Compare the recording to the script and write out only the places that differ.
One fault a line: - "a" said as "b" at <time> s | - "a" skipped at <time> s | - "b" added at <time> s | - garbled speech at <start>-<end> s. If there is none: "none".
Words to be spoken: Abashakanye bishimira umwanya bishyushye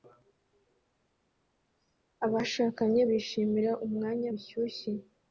none